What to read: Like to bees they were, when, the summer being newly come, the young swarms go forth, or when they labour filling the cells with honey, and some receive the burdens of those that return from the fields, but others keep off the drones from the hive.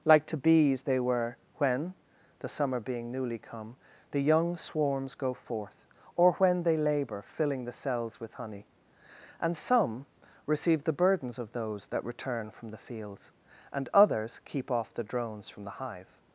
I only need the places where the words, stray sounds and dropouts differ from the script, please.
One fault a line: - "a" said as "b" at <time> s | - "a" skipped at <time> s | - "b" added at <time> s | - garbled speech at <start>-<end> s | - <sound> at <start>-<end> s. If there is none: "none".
- "but" said as "and" at 13.7 s